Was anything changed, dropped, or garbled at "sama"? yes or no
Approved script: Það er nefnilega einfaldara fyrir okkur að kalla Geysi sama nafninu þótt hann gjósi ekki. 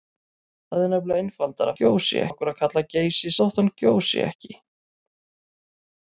yes